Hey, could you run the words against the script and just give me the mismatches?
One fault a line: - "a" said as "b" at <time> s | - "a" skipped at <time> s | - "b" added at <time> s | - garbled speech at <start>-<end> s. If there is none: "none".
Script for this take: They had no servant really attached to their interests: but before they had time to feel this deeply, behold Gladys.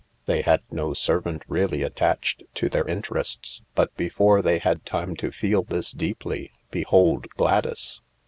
none